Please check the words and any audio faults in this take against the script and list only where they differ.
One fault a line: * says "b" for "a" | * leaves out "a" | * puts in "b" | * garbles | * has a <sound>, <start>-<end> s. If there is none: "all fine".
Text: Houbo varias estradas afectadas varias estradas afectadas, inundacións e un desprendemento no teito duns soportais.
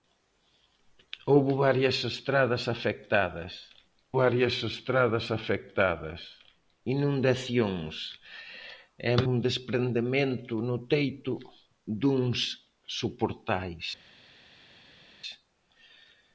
all fine